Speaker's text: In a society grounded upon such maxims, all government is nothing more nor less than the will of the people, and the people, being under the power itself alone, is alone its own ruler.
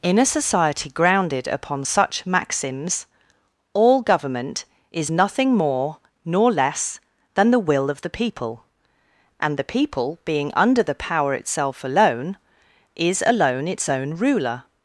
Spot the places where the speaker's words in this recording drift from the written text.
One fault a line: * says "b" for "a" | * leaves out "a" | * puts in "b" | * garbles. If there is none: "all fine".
all fine